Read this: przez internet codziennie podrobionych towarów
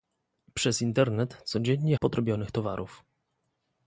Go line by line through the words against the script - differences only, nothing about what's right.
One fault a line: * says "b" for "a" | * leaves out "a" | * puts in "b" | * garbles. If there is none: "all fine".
all fine